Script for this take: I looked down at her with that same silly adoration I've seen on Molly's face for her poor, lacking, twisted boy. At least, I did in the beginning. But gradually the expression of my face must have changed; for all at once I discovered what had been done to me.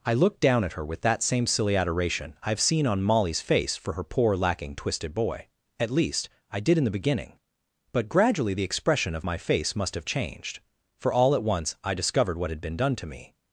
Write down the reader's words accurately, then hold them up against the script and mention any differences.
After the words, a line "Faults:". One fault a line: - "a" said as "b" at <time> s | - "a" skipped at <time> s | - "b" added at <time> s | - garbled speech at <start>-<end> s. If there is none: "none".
I looked down at her with that same silly adoration I've seen on Molly's face for her poor, lacking, twisted boy. At least, I did in the beginning. But gradually the expression of my face must have changed; for all at once I discovered what had been done to me.
Faults:
none